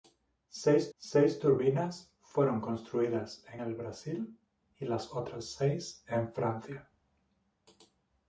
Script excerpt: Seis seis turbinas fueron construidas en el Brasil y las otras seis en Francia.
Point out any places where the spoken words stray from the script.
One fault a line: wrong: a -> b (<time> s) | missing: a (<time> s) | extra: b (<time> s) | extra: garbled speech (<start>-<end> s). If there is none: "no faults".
no faults